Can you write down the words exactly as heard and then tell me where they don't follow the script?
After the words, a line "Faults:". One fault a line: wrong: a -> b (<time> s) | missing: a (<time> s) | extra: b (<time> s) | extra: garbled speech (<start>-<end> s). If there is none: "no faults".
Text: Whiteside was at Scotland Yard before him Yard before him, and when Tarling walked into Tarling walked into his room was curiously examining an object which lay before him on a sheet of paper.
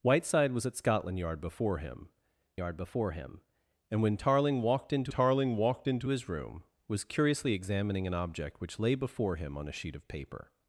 Whiteside was at Scotland Yard before him Yard before him, and when Tarling walked into Tarling walked into his room was curiously examining an object which lay before him on a sheet of paper.
Faults:
no faults